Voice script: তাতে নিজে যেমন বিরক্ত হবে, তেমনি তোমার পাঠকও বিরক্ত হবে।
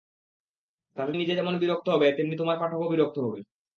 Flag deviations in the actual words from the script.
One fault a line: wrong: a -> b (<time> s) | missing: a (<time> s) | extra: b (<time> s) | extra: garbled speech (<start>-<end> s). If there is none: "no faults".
no faults